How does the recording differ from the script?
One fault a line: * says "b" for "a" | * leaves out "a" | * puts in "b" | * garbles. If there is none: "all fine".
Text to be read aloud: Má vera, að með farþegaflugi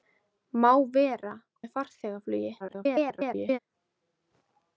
* leaves out "að"
* garbles